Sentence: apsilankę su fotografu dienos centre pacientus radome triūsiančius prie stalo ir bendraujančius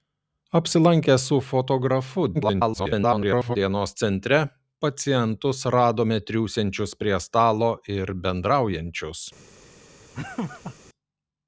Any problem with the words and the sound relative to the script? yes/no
yes